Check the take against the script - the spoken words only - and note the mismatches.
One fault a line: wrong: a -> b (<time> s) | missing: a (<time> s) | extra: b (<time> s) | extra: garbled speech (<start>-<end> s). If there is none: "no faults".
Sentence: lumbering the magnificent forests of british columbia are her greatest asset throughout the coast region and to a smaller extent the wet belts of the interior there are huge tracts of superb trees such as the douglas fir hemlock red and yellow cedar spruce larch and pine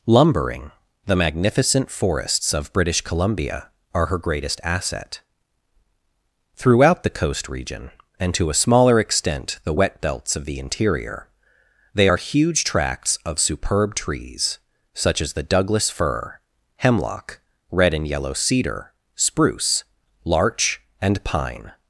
wrong: there -> they (11.9 s)